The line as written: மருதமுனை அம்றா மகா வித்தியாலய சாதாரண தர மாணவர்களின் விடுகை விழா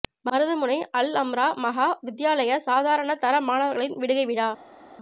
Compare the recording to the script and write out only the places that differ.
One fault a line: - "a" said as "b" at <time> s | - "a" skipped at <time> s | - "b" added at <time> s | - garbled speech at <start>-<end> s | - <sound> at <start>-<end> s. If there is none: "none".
- "அல்" added at 0.9 s